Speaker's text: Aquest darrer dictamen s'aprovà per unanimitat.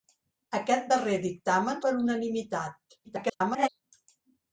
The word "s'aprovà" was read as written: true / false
false